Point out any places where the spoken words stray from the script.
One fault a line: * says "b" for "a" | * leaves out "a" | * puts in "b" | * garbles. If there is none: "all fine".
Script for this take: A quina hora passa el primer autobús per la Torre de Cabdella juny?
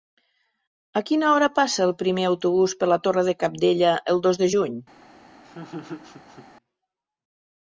* puts in "el dos de"